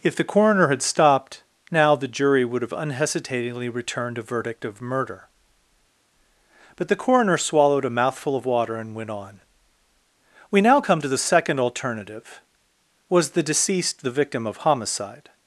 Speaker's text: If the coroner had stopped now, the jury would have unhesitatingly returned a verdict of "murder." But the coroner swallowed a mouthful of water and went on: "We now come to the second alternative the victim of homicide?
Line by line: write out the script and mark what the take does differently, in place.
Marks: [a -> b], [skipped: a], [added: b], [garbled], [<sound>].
If the coroner had stopped now, the jury would have unhesitatingly returned a verdict of "murder." But the coroner swallowed a mouthful of water and went on: "We now come to the second alternative [added: was the deceased] the victim of homicide?